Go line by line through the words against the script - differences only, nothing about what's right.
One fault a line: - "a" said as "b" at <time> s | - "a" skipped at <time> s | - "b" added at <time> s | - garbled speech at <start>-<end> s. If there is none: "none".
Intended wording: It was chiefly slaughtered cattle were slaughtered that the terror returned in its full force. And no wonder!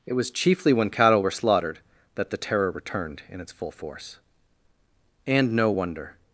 - "slaughtered" said as "when" at 0.7 s